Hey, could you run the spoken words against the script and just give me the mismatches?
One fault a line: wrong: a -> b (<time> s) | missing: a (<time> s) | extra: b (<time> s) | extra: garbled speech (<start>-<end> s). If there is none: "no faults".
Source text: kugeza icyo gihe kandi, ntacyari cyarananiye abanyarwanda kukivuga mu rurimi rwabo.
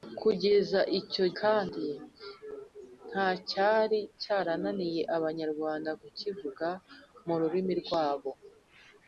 missing: gihe (1.2 s)